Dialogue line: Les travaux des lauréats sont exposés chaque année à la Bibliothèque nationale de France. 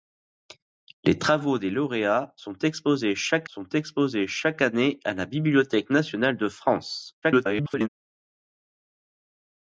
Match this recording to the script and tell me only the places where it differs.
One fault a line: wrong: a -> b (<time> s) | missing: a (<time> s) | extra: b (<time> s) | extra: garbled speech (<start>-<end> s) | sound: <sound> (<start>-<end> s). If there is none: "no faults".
extra: sont exposés chaque (3.4 s)
extra: garbled speech (7.2-7.9 s)